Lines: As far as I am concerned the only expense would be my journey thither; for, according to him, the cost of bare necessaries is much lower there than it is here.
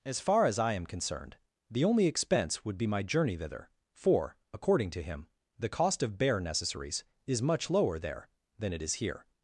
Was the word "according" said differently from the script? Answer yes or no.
no